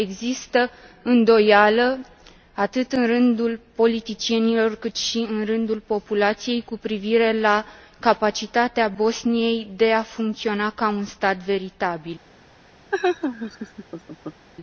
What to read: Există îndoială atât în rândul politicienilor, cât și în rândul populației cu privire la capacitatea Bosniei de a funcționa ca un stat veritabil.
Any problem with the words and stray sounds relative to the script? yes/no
yes